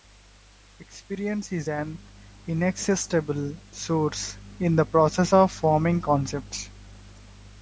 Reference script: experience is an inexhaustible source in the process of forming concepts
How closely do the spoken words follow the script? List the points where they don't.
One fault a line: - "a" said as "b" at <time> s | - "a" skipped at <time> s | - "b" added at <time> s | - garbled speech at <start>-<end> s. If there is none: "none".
none